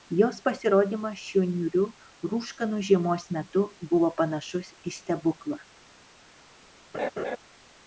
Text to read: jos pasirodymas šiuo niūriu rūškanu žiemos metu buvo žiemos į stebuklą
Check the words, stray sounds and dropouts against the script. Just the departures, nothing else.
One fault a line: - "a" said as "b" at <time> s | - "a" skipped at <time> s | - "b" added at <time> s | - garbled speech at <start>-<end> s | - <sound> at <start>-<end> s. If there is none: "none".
- "žiemos" said as "panašus" at 4.2 s
- laugh at 6.9-7.4 s